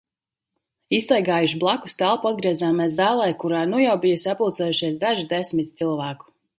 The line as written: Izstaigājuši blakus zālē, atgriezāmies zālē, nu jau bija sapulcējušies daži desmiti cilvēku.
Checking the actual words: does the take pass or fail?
fail